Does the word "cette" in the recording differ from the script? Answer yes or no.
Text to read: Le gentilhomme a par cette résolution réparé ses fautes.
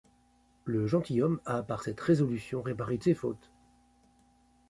no